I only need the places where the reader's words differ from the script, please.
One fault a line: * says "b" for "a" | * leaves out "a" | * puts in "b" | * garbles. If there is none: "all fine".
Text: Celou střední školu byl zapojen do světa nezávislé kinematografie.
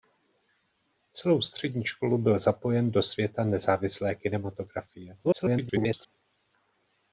* garbles